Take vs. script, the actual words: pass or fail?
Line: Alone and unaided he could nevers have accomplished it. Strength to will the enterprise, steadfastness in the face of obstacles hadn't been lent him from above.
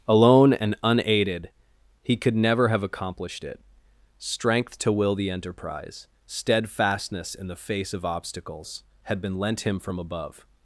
fail